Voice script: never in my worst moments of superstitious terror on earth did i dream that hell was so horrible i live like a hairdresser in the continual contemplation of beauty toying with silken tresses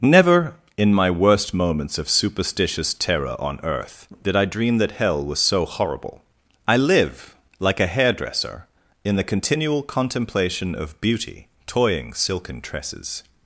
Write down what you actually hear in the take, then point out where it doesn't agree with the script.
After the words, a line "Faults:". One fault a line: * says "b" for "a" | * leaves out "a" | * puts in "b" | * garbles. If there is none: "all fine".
never in my worst moments of superstitious terror on earth did i dream that hell was so horrible i live like a hairdresser in the continual contemplation of beauty toying silken tresses
Faults:
* leaves out "with"